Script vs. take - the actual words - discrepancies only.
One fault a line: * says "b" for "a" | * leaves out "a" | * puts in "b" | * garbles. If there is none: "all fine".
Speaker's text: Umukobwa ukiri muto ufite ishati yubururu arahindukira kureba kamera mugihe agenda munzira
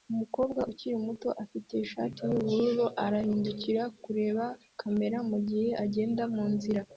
all fine